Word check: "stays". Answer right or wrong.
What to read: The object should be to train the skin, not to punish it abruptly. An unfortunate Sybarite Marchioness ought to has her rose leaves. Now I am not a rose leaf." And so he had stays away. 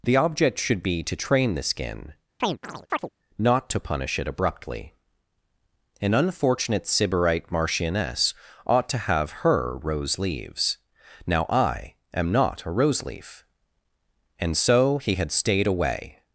wrong